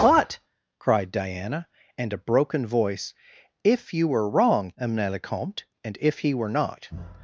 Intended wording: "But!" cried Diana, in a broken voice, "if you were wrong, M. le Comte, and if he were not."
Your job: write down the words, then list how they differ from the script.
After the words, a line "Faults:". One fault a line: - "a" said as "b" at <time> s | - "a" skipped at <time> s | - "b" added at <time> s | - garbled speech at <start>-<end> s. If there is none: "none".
"But!" cried Diana, and a broken voice, "if you were wrong, M. le Comte, and if he were not."
Faults:
- "in" said as "and" at 2.0 s